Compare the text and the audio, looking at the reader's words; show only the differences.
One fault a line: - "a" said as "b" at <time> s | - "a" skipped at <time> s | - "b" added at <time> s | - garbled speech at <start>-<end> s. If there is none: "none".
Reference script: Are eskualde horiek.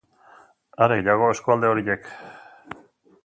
- "gehiago" added at 1.0 s